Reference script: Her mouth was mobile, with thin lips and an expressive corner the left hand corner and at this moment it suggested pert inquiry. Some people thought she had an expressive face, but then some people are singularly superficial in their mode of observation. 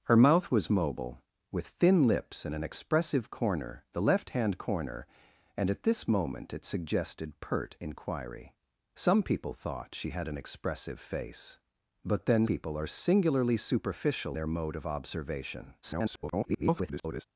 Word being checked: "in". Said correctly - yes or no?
no